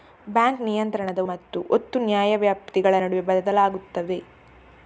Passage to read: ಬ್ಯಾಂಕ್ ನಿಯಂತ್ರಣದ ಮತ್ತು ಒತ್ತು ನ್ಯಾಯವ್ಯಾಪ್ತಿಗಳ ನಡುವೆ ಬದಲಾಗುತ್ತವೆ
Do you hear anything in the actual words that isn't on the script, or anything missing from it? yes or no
no